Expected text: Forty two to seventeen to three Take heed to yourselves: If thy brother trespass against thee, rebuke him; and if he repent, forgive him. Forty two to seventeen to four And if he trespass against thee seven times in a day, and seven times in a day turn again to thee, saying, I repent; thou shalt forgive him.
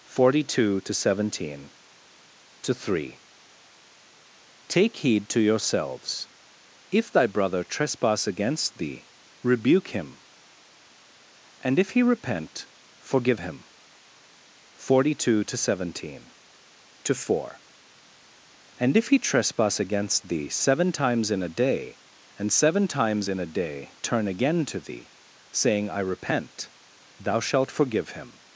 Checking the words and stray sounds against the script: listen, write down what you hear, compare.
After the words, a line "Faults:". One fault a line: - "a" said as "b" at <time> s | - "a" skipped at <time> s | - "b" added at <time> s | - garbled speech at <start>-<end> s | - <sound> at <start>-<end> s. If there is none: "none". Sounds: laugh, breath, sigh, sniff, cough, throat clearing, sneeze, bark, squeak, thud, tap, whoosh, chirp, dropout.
Forty two to seventeen to three Take heed to yourselves: If thy brother trespass against thee, rebuke him; and if he repent, forgive him. Forty two to seventeen to four And if he trespass against thee seven times in a day, and seven times in a day turn again to thee, saying, I repent; thou shalt forgive him.
Faults:
none